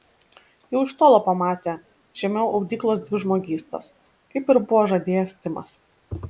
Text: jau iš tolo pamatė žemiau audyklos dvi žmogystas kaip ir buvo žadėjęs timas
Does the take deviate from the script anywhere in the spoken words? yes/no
no